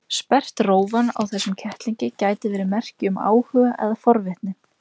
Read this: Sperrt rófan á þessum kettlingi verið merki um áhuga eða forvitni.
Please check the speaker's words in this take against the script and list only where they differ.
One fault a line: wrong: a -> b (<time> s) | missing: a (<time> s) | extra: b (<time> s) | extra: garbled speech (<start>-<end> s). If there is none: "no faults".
extra: gæti (2.2 s)